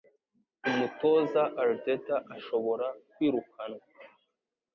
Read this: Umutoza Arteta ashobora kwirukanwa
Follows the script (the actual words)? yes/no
yes